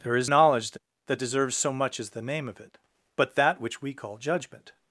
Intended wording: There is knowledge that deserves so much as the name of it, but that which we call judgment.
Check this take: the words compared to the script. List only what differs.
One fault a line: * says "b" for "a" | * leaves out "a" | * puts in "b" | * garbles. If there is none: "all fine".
all fine